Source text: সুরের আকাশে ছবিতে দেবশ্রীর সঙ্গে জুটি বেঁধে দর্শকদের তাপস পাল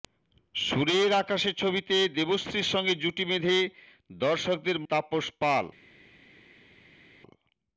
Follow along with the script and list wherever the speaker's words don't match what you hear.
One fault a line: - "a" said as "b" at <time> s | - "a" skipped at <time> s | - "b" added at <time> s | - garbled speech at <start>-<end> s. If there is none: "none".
none